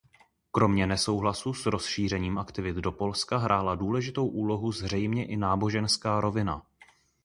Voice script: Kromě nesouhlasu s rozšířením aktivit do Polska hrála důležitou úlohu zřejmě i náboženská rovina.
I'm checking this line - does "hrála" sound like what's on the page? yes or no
yes